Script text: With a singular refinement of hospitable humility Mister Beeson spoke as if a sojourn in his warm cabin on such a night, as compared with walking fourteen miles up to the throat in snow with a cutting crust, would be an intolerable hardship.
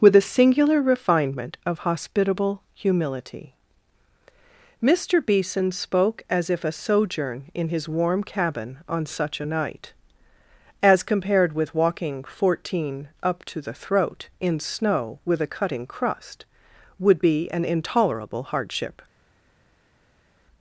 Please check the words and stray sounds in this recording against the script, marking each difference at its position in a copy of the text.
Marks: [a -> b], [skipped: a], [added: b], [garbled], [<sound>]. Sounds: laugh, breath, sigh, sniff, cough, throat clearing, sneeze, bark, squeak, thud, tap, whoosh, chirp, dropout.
With a singular refinement of hospitable humility Mister Beeson spoke as if a sojourn in his warm cabin on such a night, as compared with walking fourteen [skipped: miles] up to the throat in snow with a cutting crust, would be an intolerable hardship.